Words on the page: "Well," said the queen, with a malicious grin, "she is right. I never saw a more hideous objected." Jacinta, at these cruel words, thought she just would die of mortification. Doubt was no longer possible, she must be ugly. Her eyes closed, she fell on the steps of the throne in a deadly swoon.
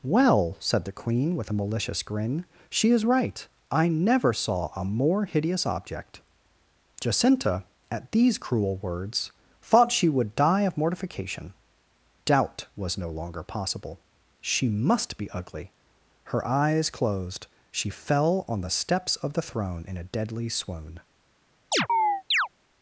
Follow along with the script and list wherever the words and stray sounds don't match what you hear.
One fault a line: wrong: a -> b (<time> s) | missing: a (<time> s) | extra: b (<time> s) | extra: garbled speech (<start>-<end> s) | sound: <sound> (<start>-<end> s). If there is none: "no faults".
wrong: objected -> object (5.7 s)
missing: just (10.1 s)
sound: chirp (21.7-22.5 s)